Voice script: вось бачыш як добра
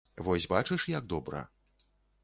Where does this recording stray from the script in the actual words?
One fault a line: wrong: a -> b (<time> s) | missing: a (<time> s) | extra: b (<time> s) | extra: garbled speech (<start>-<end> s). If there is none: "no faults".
no faults